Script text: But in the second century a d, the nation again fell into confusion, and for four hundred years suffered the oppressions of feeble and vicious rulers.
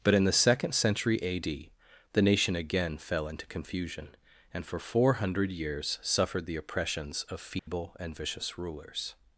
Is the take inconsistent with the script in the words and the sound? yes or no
yes